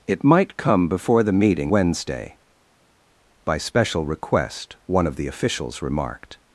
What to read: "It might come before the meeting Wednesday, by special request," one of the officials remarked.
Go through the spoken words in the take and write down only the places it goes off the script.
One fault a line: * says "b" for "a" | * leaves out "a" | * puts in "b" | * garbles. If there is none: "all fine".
all fine